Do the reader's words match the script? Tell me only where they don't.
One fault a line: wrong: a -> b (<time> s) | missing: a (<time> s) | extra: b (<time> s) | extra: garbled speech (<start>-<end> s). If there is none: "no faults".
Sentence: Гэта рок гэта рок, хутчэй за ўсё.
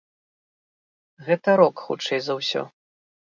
missing: гэта рок (1.8 s)